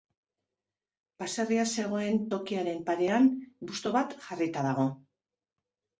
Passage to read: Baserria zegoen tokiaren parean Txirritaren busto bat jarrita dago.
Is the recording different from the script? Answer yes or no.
yes